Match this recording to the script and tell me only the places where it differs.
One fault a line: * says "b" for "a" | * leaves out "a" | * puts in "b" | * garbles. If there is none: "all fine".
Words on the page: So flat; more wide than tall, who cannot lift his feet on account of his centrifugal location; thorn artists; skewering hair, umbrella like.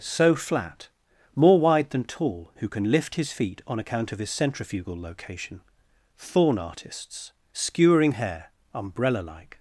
* says "can" for "cannot"